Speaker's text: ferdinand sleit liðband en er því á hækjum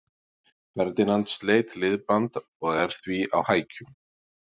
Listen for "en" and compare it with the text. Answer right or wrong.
wrong